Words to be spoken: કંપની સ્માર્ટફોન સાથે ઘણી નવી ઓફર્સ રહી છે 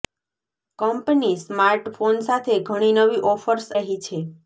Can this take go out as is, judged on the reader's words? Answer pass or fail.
pass